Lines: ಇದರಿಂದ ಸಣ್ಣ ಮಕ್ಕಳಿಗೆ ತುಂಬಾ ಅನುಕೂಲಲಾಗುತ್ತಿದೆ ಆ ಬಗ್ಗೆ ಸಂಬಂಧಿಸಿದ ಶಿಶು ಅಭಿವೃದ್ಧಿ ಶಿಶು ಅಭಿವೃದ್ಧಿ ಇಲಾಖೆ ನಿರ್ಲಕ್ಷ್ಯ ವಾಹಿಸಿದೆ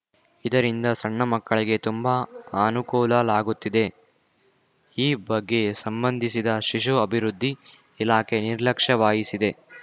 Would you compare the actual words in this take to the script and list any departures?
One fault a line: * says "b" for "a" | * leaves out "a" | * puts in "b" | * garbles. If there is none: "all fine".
* says "ಈ" for "ಆ"
* leaves out "ಶಿಶು ಅಭಿವೃದ್ಧಿ"